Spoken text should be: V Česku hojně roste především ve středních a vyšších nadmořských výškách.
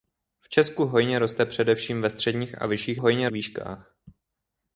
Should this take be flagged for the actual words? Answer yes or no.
yes